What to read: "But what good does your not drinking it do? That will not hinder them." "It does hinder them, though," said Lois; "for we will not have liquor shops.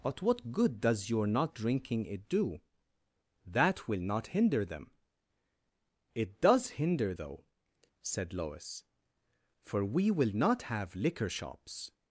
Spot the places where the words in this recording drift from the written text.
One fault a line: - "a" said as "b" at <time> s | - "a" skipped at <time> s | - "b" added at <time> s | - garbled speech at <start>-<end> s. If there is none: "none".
- "them" skipped at 7.1 s